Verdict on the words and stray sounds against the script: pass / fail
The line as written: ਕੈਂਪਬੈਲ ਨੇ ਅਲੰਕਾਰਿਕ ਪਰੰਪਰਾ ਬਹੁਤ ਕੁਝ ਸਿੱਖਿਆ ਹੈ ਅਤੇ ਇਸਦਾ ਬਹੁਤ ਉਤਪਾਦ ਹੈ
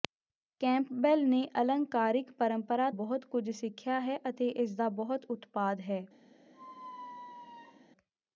fail